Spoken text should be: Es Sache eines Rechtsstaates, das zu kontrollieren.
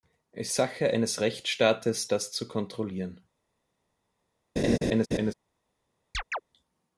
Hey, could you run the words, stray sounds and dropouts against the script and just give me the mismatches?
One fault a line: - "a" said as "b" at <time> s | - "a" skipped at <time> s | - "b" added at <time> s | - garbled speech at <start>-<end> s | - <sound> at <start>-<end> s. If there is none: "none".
- laugh at 4.6-5.3 s
- chirp at 6.1-6.4 s